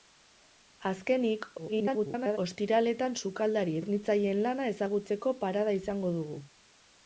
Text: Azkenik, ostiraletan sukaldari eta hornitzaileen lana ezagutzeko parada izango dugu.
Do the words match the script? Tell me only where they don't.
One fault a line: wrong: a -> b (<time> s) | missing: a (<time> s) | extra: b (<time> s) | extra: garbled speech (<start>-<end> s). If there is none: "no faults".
extra: garbled speech (1.6-2.4 s)
missing: eta (3.8 s)